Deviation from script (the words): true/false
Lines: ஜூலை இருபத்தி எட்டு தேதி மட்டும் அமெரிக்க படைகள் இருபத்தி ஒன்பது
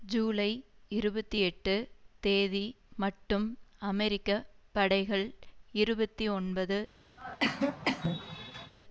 false